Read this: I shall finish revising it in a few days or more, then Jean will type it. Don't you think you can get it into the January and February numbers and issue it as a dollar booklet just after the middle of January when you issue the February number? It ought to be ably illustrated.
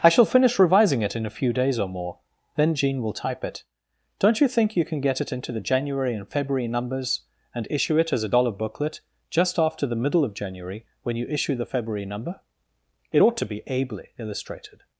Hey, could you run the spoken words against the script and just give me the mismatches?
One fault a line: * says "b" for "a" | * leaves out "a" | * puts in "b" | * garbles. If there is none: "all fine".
all fine